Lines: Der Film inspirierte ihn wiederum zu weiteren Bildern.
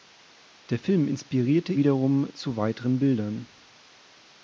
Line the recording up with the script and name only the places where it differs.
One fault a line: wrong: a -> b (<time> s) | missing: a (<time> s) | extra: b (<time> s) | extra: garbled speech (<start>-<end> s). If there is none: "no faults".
missing: ihn (1.7 s)